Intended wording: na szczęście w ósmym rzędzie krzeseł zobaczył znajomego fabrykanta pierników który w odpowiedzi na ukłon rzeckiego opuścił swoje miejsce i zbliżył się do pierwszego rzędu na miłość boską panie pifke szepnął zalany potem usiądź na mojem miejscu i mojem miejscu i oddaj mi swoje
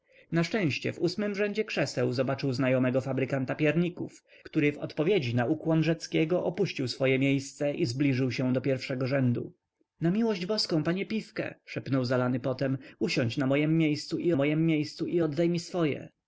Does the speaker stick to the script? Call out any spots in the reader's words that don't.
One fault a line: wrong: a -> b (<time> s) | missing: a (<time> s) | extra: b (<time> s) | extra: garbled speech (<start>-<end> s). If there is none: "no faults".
no faults